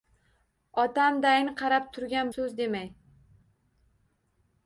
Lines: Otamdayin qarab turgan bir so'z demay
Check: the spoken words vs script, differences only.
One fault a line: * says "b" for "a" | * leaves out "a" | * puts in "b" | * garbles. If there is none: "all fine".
* leaves out "bir"